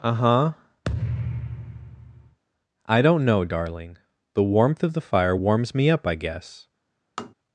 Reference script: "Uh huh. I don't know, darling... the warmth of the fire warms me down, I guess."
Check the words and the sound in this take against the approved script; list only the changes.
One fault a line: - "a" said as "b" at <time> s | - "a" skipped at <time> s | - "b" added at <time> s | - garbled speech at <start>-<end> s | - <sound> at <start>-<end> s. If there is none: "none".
- thud at 0.8-2.4 s
- "down" said as "up" at 5.9 s
- tap at 7.2-7.3 s